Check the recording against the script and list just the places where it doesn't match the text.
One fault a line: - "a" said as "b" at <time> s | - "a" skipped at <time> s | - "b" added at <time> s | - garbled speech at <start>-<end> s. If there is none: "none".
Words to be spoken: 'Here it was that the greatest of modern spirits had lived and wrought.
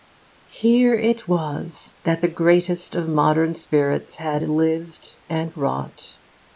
none